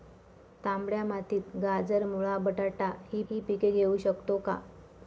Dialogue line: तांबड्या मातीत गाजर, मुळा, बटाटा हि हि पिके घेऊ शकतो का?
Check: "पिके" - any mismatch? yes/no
no